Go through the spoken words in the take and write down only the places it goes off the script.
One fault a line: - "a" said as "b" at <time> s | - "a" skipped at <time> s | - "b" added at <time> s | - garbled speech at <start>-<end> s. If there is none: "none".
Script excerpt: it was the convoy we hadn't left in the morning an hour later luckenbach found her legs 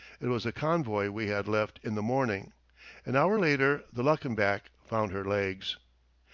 - "hadn't" said as "had" at 1.3 s
- "the" added at 3.9 s